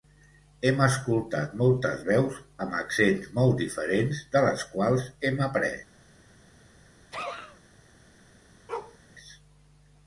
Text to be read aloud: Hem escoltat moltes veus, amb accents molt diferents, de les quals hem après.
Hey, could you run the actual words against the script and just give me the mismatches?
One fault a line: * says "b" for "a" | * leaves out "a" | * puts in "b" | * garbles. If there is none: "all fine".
all fine